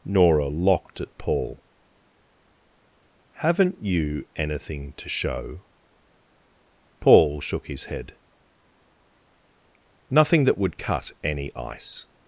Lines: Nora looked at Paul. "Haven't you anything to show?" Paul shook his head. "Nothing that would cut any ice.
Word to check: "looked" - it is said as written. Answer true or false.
false